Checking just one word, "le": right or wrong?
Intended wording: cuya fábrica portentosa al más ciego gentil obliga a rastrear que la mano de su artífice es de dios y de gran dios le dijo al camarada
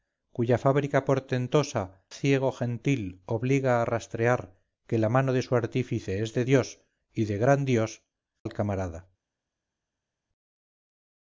wrong